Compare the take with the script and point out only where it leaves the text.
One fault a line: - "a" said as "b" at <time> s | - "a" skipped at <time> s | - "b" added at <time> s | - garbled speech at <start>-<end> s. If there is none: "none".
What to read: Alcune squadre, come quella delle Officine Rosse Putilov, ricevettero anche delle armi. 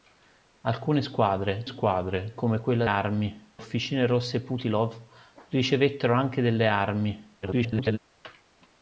- "squadre" added at 1.6 s
- "delle" said as "armi" at 2.8 s
- garbled speech at 7.4-8.0 s